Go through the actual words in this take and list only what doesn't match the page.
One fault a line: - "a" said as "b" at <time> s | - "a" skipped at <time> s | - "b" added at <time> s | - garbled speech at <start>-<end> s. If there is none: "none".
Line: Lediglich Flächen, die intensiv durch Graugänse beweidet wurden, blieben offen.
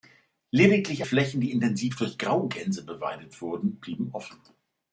none